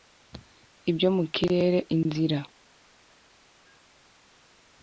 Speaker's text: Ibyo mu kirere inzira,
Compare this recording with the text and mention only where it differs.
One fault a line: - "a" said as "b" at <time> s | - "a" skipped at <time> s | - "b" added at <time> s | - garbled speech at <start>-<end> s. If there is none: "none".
none